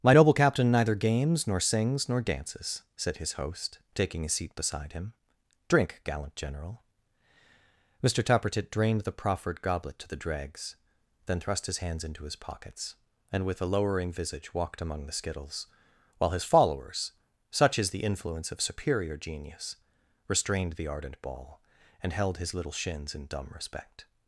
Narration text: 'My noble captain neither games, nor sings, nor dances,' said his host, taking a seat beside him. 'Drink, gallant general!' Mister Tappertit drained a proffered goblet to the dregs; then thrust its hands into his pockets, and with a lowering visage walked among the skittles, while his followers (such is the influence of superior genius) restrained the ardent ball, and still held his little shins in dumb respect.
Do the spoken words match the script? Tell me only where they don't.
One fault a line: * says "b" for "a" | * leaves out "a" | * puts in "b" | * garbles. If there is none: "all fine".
* says "the" for "a"
* says "his" for "its"
* leaves out "still"